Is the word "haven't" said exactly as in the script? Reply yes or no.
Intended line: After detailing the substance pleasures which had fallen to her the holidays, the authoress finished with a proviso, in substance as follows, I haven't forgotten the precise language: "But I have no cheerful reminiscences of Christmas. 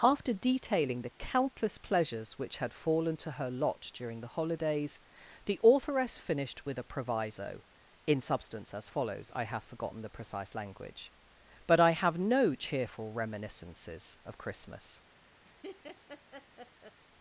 no